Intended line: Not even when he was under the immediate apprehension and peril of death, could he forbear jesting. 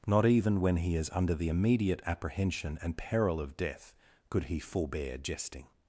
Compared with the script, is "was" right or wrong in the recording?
wrong